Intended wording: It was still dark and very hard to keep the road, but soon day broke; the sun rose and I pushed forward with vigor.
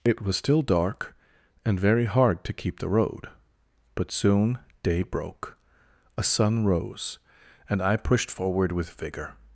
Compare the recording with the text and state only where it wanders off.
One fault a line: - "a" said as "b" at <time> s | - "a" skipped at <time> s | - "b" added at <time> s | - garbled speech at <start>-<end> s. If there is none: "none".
- "the" said as "a" at 6.2 s